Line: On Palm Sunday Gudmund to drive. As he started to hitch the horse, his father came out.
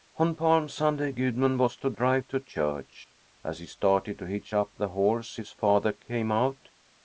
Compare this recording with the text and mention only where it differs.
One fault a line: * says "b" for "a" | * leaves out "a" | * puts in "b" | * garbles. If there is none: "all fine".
* puts in "was"
* puts in "to church"
* puts in "up"